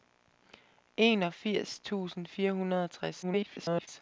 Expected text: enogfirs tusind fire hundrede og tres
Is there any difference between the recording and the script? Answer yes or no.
yes